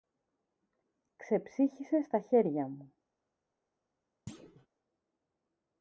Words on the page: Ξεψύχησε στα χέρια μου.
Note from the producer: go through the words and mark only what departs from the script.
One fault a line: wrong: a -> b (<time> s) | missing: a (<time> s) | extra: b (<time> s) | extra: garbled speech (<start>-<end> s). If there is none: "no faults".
no faults